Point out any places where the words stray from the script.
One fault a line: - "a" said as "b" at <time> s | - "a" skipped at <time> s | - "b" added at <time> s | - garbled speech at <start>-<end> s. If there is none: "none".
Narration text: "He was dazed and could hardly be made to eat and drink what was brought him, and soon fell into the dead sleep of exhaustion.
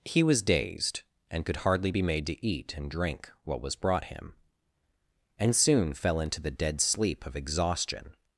none